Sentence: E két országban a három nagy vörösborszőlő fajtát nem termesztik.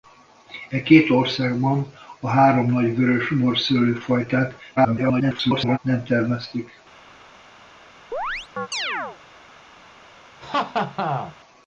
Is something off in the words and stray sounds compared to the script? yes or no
yes